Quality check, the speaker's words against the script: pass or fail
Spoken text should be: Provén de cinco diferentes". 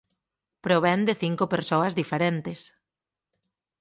fail